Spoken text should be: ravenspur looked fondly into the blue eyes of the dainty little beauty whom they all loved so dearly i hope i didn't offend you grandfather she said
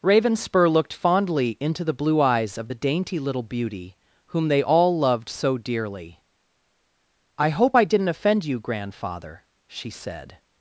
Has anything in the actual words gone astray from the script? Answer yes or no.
no